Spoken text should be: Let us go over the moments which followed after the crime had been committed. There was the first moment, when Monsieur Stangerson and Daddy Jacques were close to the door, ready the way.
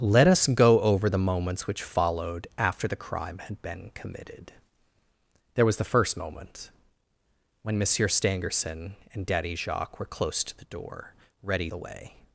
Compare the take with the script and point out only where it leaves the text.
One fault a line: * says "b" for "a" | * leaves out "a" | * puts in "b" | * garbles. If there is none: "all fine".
all fine